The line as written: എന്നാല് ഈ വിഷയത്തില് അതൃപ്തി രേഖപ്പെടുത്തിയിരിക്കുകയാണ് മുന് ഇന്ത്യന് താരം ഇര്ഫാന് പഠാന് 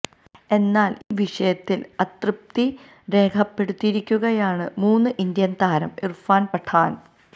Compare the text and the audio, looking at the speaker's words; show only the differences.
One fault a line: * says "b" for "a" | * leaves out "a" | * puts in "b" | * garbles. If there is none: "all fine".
all fine